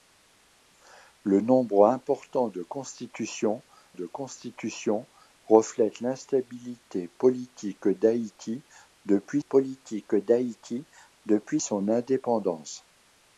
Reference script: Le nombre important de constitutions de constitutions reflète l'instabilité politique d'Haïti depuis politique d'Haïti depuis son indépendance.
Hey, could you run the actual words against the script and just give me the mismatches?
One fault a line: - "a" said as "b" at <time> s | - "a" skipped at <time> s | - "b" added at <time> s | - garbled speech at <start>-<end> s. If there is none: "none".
none